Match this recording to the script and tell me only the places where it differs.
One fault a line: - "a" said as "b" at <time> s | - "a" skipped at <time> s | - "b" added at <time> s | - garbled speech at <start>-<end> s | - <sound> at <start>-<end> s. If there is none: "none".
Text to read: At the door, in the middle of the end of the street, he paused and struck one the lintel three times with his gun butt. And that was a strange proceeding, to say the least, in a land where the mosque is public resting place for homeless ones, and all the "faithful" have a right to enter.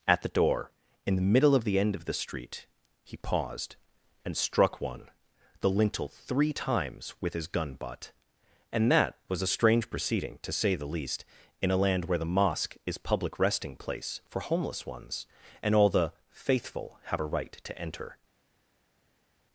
none